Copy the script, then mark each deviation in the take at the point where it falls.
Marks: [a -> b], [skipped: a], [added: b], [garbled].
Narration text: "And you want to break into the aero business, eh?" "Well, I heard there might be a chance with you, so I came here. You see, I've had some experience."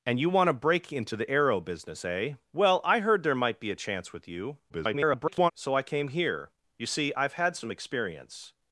"And you want to break into the aero business, eh?" "Well, I heard there might be a chance with you, [garbled] so I came here. You see, I've had some experience."